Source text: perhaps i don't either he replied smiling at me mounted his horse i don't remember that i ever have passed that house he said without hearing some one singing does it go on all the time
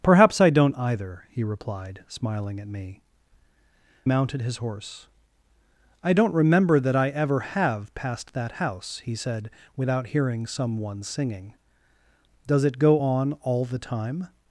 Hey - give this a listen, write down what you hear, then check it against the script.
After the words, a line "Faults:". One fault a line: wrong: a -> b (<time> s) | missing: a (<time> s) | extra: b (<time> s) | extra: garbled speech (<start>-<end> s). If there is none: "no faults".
perhaps i don't either he replied smiling at me mounted his horse i don't remember that i ever have passed that house he said without hearing some one singing does it go on all the time
Faults:
no faults